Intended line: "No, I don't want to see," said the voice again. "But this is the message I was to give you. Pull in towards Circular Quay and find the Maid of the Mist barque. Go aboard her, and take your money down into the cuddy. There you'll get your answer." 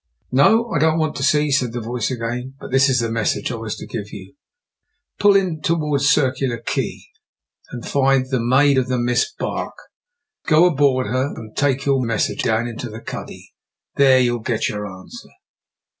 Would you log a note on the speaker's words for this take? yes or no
yes